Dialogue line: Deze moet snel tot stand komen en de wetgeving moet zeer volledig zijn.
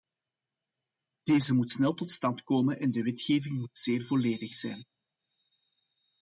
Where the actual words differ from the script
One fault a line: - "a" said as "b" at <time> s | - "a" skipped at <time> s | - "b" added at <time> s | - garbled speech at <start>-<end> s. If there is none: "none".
none